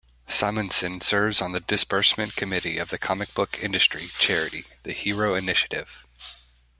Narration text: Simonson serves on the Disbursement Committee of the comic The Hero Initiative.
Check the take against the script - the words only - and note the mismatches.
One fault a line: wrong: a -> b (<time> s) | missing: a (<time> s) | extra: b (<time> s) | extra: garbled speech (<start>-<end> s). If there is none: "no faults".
extra: book industry charity (3.4 s)